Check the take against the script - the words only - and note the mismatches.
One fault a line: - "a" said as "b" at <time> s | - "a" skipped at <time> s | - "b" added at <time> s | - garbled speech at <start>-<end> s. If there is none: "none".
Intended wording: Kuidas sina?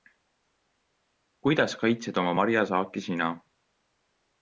- "kaitsed oma marjasaaki" added at 1.8 s